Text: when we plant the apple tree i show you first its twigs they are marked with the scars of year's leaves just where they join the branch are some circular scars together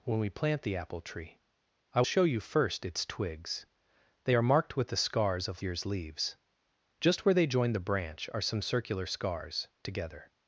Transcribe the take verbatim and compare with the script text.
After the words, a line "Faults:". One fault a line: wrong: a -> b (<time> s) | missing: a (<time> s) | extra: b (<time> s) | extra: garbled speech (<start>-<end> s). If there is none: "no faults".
when we plant the apple tree i show you first its twigs they are marked with the scars of year's leaves just where they join the branch are some circular scars together
Faults:
no faults